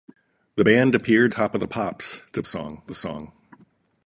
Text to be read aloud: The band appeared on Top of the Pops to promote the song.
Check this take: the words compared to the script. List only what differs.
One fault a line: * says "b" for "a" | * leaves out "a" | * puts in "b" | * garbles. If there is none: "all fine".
* leaves out "on"
* says "song" for "promote"